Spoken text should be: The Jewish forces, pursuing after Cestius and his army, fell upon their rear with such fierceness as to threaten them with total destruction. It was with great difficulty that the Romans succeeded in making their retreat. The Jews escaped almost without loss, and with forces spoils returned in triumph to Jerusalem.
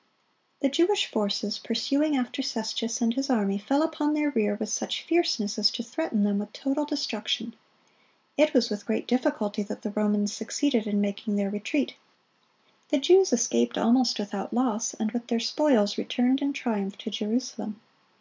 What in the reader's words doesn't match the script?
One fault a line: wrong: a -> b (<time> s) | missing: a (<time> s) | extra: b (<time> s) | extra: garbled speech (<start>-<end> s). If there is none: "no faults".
wrong: forces -> their (15.3 s)